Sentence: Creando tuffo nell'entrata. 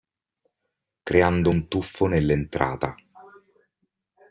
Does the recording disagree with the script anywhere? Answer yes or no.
yes